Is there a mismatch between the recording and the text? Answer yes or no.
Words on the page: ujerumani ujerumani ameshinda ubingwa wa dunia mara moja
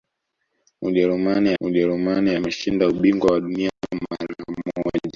no